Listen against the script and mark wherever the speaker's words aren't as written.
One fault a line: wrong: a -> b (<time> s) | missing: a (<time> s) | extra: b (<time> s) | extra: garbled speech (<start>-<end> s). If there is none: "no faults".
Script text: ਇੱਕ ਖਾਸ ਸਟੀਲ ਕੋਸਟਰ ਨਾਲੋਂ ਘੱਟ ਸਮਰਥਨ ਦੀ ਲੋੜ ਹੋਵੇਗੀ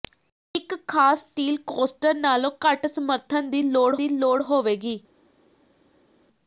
extra: ਦੀ ਲੋੜ (4.0 s)